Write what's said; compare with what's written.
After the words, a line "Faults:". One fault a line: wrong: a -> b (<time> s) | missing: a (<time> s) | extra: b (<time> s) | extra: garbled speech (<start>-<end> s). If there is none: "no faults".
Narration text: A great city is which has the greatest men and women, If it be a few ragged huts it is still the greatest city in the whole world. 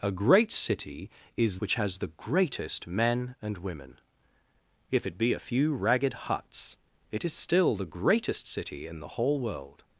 A great city is which has the greatest men and women, If it be a few ragged huts it is still the greatest city in the whole world.
Faults:
no faults